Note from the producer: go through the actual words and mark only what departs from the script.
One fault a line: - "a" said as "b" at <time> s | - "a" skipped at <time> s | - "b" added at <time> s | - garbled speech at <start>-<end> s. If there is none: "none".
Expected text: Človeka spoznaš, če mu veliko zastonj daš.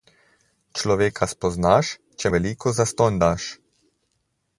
- "mu" skipped at 2.3 s